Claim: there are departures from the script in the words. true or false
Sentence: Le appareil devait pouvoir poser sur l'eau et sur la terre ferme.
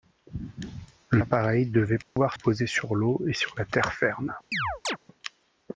false